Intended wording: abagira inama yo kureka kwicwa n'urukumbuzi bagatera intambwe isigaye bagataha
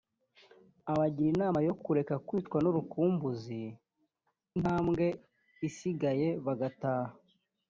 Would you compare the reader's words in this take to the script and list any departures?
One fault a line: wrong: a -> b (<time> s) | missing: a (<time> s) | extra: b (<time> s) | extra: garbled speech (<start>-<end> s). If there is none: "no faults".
missing: bagatera (3.6 s)